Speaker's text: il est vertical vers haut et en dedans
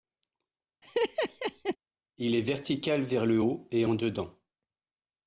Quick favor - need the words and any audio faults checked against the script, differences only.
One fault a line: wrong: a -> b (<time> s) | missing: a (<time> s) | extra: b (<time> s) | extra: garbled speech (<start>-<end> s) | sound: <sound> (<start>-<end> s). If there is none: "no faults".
sound: laugh (0.8-1.8 s)
extra: le (3.2 s)